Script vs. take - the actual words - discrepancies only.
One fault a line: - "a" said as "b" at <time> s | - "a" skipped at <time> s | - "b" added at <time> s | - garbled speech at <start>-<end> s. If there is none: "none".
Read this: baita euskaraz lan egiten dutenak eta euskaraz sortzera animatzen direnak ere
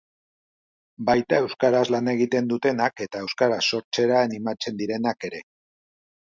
none